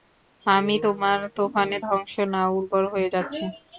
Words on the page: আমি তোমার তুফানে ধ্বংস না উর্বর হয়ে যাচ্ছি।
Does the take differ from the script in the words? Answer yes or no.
no